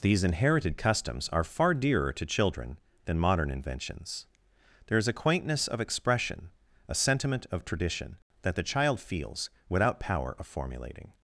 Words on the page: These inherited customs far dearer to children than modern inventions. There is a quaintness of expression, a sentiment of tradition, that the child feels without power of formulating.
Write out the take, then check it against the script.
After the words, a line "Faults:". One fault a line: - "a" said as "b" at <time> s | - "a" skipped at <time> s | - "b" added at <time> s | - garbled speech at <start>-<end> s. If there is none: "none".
These inherited customs are far dearer to children than modern inventions. There is a quaintness of expression, a sentiment of tradition, that the child feels without power of formulating.
Faults:
- "are" added at 1.3 s